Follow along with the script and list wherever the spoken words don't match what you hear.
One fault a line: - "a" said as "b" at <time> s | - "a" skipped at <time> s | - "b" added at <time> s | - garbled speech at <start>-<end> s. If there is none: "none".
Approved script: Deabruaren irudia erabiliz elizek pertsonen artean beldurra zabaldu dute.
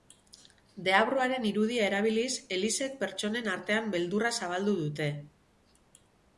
none